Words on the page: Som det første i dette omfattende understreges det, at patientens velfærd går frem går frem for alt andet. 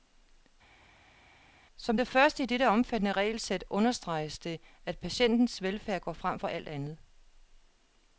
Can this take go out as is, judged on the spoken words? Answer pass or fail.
fail